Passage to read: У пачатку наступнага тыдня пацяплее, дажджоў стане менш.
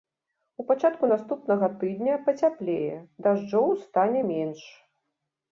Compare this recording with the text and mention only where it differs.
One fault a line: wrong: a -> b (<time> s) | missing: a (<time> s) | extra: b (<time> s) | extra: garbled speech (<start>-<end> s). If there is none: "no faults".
no faults